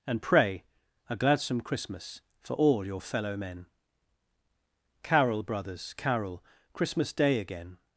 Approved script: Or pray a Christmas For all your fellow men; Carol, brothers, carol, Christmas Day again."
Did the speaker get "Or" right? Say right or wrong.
wrong